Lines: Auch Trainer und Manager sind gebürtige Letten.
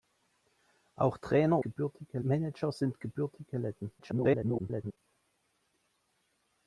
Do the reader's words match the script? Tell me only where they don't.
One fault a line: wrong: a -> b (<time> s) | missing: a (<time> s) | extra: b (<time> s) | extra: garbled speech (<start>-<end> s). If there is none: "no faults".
wrong: und -> gebürtige (1.6 s)
extra: garbled speech (4.0-5.0 s)